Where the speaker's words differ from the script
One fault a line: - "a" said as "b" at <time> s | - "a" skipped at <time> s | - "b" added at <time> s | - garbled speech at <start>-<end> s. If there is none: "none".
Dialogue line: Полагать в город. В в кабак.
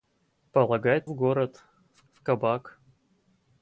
none